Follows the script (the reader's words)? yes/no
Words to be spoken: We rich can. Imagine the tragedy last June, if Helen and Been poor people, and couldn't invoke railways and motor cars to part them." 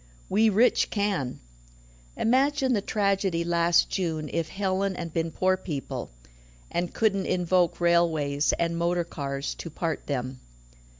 yes